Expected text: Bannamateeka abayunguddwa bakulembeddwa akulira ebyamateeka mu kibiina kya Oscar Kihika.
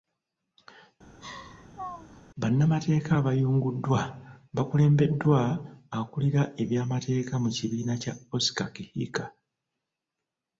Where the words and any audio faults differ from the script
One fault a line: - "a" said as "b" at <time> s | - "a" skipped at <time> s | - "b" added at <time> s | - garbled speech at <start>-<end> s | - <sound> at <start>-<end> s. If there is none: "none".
- laugh at 1.2-2.2 s